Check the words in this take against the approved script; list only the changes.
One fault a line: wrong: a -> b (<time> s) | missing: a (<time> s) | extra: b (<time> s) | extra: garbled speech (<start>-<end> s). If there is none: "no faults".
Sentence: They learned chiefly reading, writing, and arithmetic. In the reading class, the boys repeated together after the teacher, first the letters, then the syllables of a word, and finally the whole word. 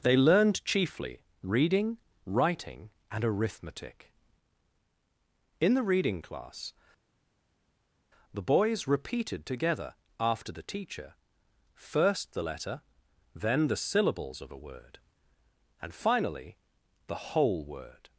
wrong: letters -> letter (12.4 s)